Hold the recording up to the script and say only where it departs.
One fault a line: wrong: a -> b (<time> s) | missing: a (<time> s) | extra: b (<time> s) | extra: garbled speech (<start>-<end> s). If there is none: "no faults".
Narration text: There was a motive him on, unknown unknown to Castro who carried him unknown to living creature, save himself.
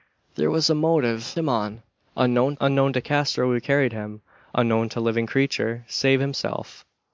no faults